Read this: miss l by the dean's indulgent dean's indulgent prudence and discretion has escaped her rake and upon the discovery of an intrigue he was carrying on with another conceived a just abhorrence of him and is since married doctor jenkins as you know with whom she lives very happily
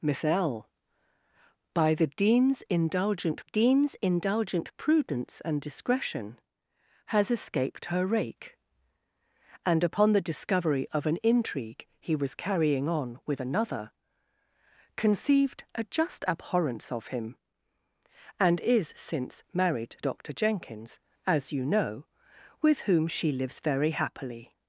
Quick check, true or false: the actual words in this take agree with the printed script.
true